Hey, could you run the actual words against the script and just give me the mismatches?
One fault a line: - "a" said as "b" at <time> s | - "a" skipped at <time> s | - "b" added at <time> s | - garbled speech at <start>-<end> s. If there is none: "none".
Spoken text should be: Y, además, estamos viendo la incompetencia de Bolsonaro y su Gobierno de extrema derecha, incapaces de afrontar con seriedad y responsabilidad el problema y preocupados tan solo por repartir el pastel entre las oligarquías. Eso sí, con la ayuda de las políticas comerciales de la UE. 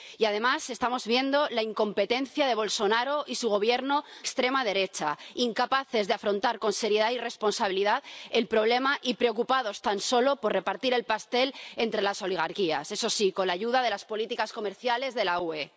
- "de" skipped at 4.0 s